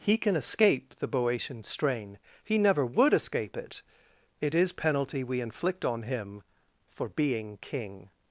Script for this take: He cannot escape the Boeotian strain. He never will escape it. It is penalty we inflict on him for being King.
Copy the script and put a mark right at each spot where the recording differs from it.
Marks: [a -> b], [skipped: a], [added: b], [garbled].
He [cannot -> can] escape the Boeotian strain. He never [will -> would] escape it. It is penalty we inflict on him for being King.